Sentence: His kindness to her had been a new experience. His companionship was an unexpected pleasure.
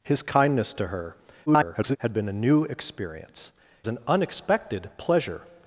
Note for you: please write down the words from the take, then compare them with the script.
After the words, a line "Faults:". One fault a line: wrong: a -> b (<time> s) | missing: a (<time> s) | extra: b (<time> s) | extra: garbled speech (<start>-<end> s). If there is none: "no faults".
His kindness to her [garbled] had been a new experience. An unexpected pleasure.
Faults:
extra: garbled speech (1.5-2.0 s)
missing: His companionship was (3.5 s)